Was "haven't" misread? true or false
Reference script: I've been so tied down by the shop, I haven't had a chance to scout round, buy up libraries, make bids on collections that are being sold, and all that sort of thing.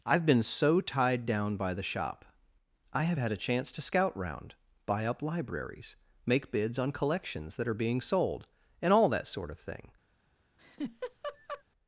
true